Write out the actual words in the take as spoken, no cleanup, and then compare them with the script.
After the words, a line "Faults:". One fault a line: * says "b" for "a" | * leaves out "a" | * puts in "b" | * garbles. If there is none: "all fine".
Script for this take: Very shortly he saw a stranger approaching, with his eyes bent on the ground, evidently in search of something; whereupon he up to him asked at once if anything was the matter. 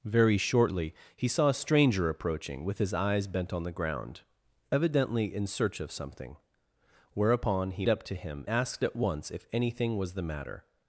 Very shortly he saw a stranger approaching, with his eyes bent on the ground, evidently in search of something; whereupon he up to him asked at once if anything was the matter.
Faults:
all fine